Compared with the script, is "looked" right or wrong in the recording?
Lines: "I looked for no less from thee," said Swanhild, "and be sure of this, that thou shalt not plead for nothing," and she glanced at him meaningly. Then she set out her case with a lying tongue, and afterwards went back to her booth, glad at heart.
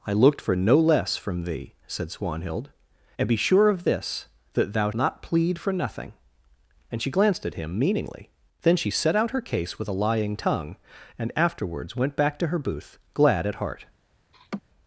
right